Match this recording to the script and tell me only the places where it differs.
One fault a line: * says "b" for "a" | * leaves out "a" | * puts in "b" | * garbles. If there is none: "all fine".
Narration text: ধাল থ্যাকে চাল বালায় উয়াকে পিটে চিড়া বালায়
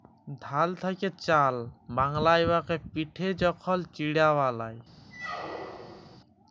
* puts in "যখল"